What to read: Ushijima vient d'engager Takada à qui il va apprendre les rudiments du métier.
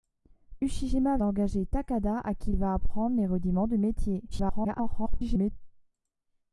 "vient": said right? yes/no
no